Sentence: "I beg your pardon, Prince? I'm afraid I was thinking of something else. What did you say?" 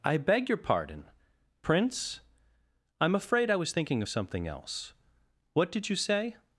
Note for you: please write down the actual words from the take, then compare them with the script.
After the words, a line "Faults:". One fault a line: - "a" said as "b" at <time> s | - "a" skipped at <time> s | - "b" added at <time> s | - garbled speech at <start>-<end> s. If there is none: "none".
"I beg your pardon, Prince? I'm afraid I was thinking of something else. What did you say?"
Faults:
none